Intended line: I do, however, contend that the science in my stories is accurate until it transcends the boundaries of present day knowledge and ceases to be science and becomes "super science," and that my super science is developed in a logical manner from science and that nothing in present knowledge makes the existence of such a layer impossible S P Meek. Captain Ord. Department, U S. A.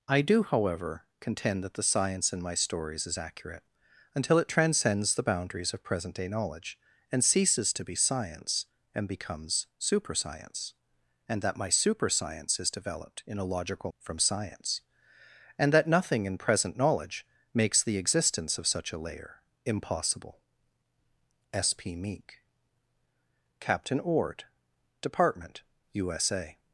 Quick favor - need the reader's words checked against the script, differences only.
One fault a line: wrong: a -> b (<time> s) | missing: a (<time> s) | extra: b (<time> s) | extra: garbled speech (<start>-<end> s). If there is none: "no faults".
missing: manner (13.9 s)